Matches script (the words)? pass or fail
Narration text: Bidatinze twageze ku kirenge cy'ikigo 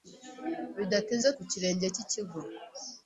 fail